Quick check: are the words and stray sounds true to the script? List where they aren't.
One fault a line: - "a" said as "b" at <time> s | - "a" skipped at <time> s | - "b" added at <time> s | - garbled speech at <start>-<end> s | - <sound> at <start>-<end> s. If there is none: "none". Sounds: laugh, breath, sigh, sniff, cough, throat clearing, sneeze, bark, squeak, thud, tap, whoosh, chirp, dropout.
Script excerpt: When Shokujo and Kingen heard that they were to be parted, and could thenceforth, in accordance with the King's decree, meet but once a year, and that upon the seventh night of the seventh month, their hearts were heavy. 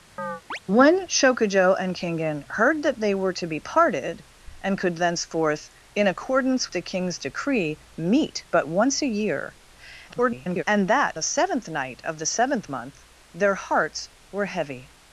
- chirp at 0.2-0.6 s
- "with" skipped at 6.7 s
- garbled speech at 10.1-10.6 s
- "upon" skipped at 11.2 s